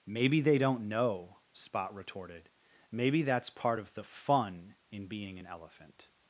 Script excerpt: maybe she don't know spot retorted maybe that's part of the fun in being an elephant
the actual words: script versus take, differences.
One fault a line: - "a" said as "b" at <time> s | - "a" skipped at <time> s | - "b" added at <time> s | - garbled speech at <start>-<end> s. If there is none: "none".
- "she" said as "they" at 0.4 s